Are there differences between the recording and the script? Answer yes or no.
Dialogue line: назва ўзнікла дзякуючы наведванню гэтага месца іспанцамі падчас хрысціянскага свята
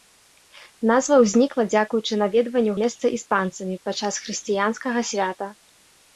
yes